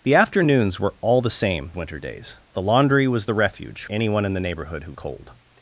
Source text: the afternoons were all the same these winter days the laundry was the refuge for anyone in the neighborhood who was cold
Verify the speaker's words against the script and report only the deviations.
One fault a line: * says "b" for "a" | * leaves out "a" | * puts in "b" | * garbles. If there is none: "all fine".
* leaves out "these"
* leaves out "for"
* leaves out "was"